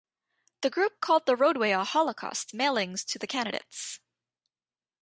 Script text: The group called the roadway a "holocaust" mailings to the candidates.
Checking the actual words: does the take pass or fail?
pass